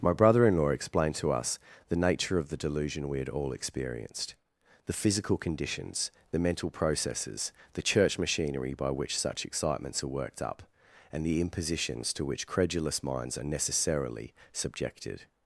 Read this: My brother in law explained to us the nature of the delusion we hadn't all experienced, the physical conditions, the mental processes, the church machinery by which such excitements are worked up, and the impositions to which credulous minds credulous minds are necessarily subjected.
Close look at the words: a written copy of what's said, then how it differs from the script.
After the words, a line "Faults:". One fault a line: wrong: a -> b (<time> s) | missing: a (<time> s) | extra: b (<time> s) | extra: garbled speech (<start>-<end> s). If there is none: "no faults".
My brother in law explained to us the nature of the delusion we had all experienced, the physical conditions, the mental processes, the church machinery by which such excitements are worked up, and the impositions to which credulous minds are necessarily subjected.
Faults:
wrong: hadn't -> had (3.2 s)
missing: credulous minds (13.4 s)